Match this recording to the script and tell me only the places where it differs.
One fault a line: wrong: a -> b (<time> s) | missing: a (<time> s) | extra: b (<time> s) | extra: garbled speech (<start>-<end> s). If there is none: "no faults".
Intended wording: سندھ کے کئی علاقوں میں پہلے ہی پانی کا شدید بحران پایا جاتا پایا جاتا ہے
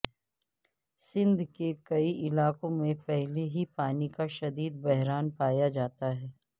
missing: پایا جاتا (6.2 s)